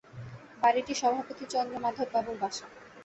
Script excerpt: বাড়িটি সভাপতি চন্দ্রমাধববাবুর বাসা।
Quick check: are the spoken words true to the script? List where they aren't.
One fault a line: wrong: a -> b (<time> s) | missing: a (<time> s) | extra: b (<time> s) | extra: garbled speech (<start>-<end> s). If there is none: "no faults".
no faults